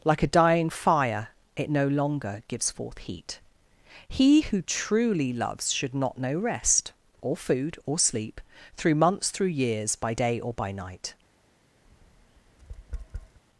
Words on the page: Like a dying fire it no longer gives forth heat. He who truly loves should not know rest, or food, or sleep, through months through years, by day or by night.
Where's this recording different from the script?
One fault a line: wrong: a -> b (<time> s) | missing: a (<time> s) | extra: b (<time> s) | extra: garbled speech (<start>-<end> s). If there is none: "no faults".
no faults